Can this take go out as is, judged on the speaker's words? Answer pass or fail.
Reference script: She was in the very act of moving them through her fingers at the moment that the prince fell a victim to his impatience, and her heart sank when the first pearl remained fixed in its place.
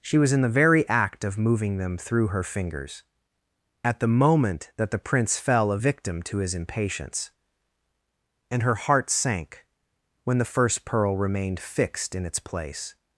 pass